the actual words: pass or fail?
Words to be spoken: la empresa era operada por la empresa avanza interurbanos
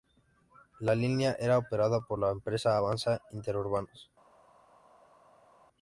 fail